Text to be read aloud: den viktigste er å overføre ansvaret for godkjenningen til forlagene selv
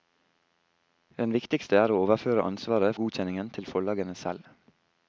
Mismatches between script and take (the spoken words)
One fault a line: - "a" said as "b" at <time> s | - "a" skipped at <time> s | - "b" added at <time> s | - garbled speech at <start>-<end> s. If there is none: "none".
- "for" skipped at 3.0 s